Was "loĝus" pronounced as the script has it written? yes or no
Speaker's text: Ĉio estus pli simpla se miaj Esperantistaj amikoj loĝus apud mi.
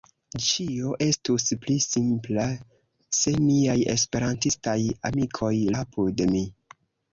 no